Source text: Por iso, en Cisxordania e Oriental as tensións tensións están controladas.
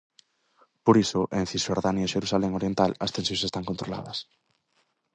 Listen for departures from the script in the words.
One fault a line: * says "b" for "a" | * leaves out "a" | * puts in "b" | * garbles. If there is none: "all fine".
* puts in "Xerusalén"
* leaves out "tensións"